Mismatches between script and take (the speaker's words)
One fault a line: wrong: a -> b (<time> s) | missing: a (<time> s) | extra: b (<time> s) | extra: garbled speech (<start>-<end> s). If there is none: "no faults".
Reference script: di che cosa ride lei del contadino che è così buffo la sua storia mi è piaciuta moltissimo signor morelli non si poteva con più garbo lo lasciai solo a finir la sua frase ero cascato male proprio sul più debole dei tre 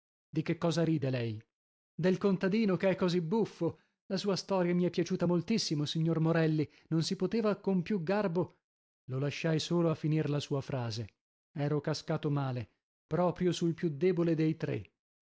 no faults